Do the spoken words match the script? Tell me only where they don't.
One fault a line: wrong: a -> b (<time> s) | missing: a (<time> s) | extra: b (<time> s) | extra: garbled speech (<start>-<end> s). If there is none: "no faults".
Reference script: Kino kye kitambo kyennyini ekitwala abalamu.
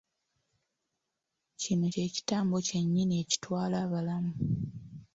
no faults